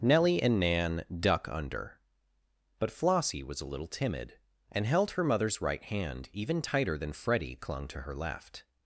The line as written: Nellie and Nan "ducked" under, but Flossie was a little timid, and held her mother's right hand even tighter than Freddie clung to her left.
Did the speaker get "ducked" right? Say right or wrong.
wrong